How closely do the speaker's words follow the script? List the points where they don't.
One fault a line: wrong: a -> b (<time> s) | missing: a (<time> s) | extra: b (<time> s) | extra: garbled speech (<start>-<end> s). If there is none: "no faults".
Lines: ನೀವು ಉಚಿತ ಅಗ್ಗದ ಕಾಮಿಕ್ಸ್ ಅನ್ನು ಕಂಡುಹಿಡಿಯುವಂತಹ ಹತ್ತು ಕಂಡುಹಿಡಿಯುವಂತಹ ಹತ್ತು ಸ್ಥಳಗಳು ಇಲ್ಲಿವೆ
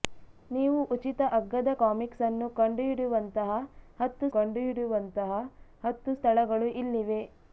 no faults